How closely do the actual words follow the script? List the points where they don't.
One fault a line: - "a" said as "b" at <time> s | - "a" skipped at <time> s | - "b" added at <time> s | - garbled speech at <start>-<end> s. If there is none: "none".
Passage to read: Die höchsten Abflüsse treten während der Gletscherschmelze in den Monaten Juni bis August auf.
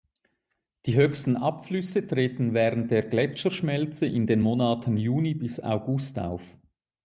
none